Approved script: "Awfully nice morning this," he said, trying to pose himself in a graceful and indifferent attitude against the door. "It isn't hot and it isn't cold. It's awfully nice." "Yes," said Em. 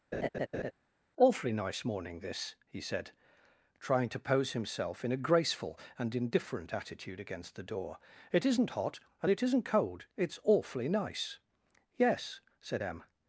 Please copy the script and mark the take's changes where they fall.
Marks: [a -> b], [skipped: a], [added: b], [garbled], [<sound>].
[laugh] "Awfully nice morning this," he said, trying to pose himself in a graceful and indifferent attitude against the door. "It isn't hot and it isn't cold. It's awfully nice." "Yes," said Em.